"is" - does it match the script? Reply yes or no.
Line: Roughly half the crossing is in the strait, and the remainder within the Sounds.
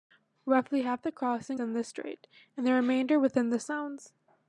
no